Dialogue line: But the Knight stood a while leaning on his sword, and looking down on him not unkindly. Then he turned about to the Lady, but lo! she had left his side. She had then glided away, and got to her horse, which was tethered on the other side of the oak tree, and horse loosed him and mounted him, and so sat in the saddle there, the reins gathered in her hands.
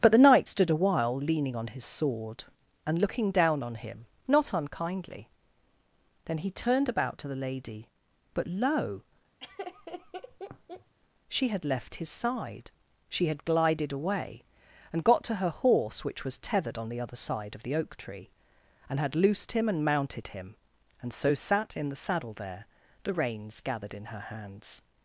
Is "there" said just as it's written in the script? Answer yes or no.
yes